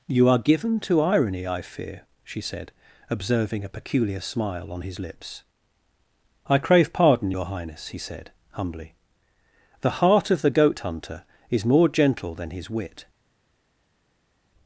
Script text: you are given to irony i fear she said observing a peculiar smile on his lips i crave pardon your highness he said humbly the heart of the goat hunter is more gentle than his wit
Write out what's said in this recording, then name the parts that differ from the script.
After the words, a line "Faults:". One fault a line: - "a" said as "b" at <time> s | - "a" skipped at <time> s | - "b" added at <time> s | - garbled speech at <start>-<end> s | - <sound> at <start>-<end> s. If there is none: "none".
you are given to irony i fear she said observing a peculiar smile on his lips i crave pardon your highness he said humbly the heart of the goat hunter is more gentle than his wit
Faults:
none